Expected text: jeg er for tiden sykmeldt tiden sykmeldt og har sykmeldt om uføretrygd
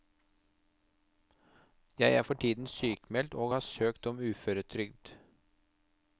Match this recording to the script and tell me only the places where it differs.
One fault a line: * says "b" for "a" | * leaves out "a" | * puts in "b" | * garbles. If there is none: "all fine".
* leaves out "tiden sykmeldt"
* says "søkt" for "sykmeldt"